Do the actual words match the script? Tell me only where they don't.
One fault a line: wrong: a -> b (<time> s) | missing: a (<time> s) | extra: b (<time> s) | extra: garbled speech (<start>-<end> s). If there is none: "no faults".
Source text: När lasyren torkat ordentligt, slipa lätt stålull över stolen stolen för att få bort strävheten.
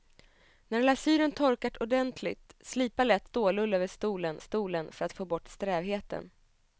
no faults